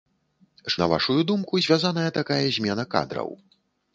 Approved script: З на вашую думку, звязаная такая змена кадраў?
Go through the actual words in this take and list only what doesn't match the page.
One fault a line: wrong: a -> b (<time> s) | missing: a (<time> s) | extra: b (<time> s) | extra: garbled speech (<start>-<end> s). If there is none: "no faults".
no faults